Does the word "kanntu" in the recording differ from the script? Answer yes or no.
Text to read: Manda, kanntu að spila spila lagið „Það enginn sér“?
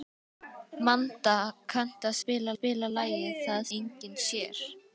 no